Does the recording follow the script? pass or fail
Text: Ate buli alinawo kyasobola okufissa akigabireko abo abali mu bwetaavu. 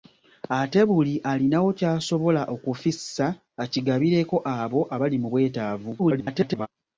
fail